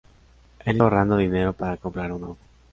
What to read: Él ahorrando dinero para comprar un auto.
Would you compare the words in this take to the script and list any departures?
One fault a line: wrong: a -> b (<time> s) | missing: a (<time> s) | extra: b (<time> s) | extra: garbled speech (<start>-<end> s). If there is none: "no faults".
no faults